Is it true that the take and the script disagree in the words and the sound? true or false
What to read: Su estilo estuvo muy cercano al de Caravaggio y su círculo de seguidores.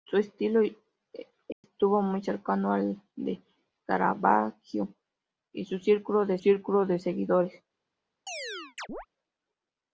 true